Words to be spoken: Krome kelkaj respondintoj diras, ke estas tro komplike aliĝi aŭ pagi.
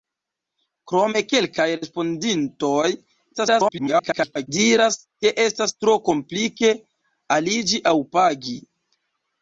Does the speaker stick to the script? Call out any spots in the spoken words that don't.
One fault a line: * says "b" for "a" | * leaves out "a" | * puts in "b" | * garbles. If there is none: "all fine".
* garbles